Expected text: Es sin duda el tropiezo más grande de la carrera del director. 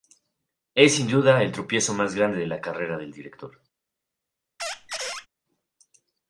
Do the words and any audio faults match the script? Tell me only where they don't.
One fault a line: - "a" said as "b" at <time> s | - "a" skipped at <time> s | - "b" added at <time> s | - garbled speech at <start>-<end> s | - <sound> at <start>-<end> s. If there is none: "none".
- squeak at 4.6-5.3 s